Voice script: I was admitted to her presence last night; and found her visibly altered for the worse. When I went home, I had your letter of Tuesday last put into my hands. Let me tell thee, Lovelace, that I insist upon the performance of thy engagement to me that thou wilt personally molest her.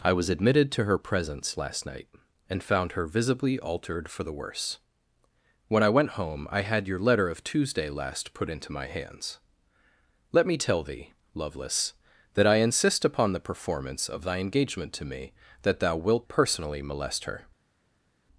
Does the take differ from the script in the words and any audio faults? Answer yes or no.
no